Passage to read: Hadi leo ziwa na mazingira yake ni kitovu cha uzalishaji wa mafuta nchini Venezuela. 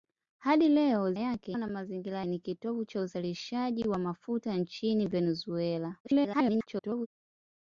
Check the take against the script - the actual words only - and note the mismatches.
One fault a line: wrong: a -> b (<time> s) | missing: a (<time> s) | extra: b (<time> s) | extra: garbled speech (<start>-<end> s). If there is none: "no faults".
wrong: ziwa -> yake (1.2 s)
missing: yake (2.3 s)
extra: garbled speech (6.0-7.1 s)